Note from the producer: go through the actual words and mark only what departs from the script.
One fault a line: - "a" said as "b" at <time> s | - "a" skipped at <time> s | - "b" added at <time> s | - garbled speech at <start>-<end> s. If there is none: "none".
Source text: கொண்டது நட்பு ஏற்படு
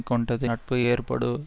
none